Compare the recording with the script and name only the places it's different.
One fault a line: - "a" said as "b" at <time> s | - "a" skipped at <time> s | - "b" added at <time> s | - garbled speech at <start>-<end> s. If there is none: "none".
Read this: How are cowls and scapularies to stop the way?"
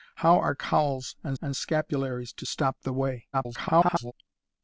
- "and" added at 1.4 s
- garbled speech at 3.3-4.1 s